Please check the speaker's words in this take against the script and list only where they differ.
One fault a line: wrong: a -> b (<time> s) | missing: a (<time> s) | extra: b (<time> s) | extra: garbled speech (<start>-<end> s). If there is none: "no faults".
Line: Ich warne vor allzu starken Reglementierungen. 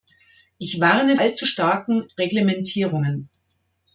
missing: vor (1.1 s)